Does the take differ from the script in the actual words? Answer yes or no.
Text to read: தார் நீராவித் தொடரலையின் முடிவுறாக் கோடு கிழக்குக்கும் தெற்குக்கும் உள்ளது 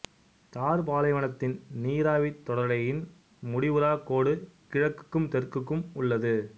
yes